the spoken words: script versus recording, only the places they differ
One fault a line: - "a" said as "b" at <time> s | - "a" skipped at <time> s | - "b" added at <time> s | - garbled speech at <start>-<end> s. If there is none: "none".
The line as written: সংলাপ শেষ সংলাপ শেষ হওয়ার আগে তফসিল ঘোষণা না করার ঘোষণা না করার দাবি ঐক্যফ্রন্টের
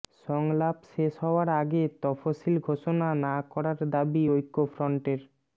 - "সংলাপ শেষ" skipped at 1.1 s
- "ঘোষণা না করার" skipped at 3.8 s